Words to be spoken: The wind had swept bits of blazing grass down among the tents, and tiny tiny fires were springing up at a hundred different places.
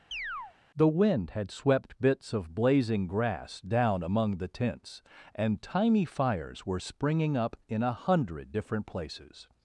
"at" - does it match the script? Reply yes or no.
no